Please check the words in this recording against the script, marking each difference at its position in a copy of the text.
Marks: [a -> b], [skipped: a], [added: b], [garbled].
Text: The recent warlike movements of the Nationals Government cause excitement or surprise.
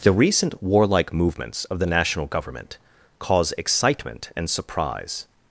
The recent warlike movements of the [Nationals -> National] Government cause excitement [or -> and] surprise.